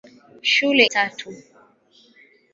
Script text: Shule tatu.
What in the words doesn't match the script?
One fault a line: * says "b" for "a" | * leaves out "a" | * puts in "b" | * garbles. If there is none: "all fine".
all fine